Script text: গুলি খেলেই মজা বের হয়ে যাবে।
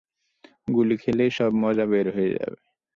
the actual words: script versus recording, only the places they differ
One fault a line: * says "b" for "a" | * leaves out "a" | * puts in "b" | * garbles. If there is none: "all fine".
* puts in "সব"